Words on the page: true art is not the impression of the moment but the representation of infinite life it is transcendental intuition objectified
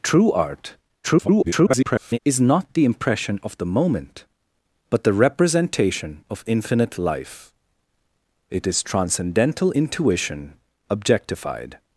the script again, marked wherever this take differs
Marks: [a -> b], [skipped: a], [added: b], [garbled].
true art [garbled] is not the impression of the moment but the representation of infinite life it is transcendental intuition objectified